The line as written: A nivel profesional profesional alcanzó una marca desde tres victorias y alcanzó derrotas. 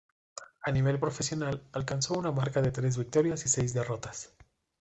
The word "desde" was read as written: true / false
false